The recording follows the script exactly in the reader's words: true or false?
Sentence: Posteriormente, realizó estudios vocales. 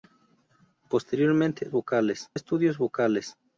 false